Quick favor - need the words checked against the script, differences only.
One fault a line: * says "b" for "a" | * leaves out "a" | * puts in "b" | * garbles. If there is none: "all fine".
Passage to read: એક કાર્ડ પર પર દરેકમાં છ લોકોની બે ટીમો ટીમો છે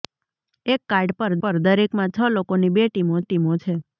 all fine